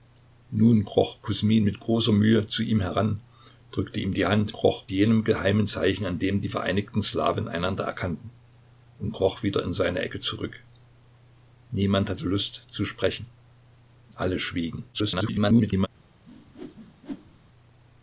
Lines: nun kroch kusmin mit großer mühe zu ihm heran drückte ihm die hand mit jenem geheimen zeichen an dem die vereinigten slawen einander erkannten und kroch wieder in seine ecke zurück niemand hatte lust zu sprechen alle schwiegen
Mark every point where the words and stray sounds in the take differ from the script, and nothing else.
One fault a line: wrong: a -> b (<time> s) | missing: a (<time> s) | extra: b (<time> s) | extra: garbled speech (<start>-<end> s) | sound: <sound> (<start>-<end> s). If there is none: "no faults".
wrong: mit -> kroch (4.5 s)
extra: garbled speech (14.9-15.9 s)
sound: whoosh (16.2-17.4 s)